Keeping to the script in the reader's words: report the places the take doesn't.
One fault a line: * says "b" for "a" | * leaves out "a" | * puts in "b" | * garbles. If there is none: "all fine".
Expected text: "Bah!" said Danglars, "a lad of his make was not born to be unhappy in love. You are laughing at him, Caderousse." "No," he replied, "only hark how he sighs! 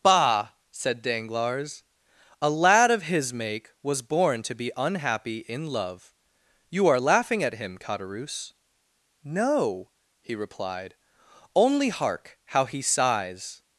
* leaves out "not"